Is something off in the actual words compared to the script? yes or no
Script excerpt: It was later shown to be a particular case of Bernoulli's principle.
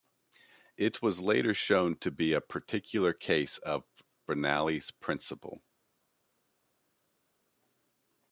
no